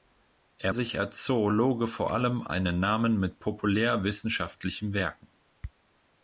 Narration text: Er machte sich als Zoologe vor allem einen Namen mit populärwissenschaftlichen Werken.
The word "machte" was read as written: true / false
false